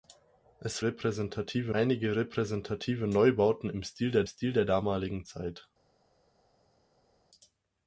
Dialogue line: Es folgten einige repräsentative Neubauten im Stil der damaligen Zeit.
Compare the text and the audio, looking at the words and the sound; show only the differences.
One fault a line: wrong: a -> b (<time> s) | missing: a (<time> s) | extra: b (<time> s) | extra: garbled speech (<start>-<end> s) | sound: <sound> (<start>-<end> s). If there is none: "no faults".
wrong: folgten -> repräsentative (0.8 s)
extra: Stil der (4.3 s)